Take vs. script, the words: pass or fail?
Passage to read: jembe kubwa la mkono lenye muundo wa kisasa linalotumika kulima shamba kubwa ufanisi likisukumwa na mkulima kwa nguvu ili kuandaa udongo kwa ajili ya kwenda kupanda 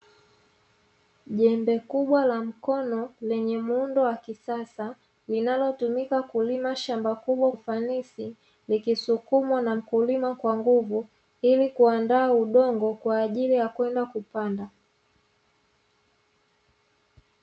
pass